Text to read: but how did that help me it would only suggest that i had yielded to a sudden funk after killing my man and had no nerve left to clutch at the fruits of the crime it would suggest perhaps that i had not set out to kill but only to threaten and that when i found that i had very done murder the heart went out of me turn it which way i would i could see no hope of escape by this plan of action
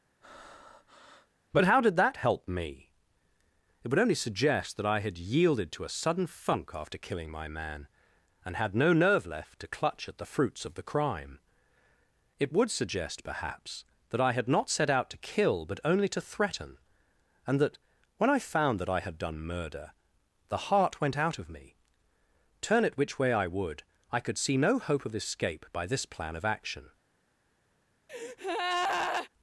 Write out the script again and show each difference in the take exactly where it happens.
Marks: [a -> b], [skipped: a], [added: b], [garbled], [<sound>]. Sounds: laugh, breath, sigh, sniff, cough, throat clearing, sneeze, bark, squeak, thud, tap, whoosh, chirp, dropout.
[breath] but how did that help me it would only suggest that i had yielded to a sudden funk after killing my man and had no nerve left to clutch at the fruits of the crime it would suggest perhaps that i had not set out to kill but only to threaten and that when i found that i had [skipped: very] done murder the heart went out of me turn it which way i would i could see no hope of escape by this plan of action [breath]